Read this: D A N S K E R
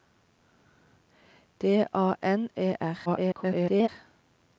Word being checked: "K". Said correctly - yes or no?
no